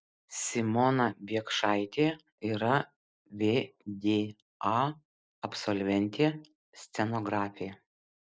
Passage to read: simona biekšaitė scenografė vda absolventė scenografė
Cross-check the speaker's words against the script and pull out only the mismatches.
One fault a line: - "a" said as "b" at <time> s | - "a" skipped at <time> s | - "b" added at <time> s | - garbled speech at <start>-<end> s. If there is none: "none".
- "scenografė" said as "yra" at 2.5 s